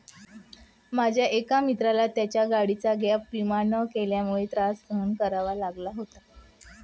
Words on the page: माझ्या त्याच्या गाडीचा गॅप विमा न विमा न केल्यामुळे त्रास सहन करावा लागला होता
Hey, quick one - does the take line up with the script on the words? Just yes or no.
no